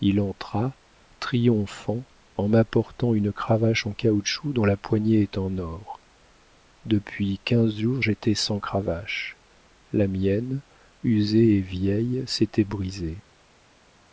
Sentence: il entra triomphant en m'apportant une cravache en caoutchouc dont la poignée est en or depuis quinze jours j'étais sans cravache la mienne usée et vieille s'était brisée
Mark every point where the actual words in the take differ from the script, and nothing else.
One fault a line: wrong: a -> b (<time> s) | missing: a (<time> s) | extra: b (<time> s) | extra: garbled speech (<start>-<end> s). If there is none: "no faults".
no faults